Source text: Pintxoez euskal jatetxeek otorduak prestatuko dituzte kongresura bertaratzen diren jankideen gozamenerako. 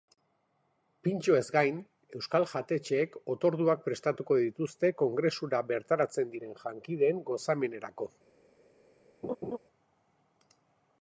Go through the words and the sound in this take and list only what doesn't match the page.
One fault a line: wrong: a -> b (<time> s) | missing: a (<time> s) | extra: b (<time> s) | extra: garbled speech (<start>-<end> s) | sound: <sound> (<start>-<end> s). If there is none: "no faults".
extra: gain (1.6 s)
sound: laugh (9.2-9.6 s)